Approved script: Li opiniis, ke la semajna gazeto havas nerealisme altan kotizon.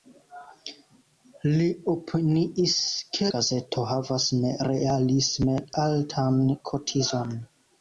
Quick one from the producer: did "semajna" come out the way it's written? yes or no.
no